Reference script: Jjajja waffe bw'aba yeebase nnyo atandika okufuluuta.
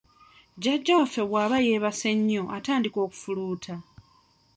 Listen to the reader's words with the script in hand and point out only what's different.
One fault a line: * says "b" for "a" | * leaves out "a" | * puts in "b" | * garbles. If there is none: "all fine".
all fine